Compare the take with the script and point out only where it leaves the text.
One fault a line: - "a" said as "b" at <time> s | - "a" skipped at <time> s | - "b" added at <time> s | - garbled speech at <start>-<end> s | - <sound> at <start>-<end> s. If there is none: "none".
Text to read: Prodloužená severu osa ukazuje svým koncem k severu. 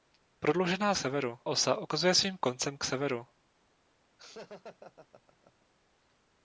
- laugh at 4.2-5.7 s